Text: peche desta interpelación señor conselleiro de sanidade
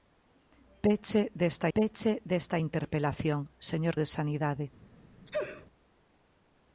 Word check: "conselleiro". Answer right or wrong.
wrong